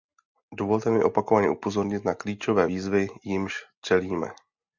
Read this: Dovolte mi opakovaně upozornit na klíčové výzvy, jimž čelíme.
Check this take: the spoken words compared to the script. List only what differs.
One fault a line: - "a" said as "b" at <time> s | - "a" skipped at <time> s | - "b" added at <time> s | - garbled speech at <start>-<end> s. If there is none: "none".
none